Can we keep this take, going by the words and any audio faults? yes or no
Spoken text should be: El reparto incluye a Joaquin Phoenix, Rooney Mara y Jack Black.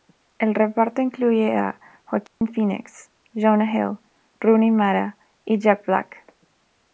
no